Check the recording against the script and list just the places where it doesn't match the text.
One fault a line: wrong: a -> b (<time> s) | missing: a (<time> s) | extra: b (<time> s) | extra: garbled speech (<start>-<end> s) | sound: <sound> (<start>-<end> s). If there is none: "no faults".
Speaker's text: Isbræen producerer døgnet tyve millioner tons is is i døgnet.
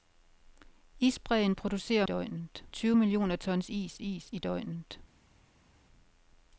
no faults